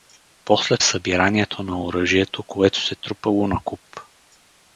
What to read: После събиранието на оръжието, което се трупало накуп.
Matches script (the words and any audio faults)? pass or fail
pass